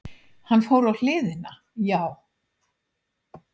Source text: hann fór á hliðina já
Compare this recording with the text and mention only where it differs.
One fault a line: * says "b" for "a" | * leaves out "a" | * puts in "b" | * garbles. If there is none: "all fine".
all fine